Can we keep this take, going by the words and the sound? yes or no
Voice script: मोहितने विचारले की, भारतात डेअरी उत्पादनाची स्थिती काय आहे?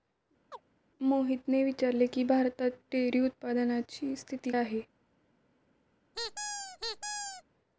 no